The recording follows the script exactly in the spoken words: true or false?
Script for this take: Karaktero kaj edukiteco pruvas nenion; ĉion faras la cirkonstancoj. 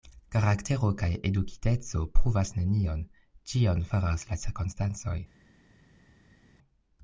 true